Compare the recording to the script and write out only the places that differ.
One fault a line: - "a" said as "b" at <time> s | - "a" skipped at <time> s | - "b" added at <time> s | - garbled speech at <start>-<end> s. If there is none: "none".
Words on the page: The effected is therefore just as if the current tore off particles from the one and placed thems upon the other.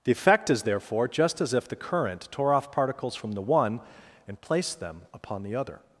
- "effected" said as "effect" at 0.1 s
- "thems" said as "them" at 4.8 s